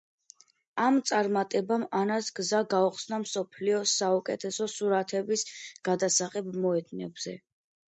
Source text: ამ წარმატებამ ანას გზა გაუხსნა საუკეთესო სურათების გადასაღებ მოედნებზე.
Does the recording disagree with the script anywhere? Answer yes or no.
yes